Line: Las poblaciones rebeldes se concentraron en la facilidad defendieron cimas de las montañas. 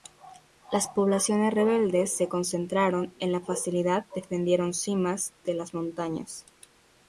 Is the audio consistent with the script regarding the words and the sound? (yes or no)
yes